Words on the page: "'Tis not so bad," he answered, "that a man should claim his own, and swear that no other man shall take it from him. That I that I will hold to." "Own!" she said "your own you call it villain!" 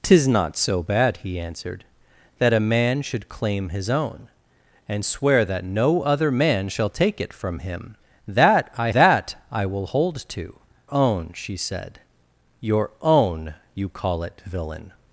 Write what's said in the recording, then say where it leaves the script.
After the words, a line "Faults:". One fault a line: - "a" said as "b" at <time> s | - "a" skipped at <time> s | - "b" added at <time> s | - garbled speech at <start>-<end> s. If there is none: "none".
"'Tis not so bad," he answered, "that a man should claim his own, and swear that no other man shall take it from him. That I that I will hold to." "Own!" she said "your own you call it villain!"
Faults:
none